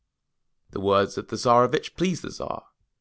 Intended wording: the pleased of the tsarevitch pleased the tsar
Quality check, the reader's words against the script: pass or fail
fail